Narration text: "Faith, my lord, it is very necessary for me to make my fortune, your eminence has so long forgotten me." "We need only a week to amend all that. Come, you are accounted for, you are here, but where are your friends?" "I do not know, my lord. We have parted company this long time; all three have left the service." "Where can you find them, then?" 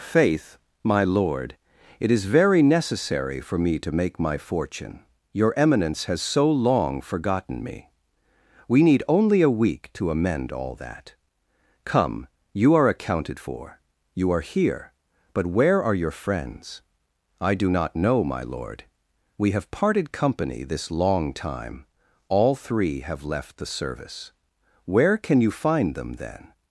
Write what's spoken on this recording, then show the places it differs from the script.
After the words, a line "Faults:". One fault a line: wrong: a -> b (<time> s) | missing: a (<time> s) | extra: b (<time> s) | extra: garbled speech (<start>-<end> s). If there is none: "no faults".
"Faith, my lord, it is very necessary for me to make my fortune, your eminence has so long forgotten me." "We need only a week to amend all that. Come, you are accounted for, you are here, but where are your friends?" "I do not know, my lord. We have parted company this long time; all three have left the service." "Where can you find them, then?"
Faults:
no faults